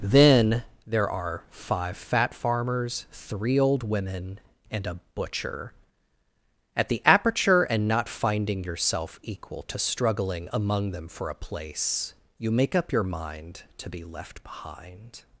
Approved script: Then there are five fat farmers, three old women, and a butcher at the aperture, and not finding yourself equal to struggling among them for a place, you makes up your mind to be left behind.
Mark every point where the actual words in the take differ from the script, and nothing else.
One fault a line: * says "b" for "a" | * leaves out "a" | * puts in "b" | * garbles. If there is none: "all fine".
* says "make" for "makes"